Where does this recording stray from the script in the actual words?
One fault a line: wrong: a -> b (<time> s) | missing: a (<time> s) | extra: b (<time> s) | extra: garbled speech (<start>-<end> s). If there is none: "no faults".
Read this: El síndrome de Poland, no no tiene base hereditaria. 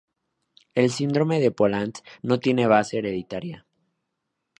missing: no (2.4 s)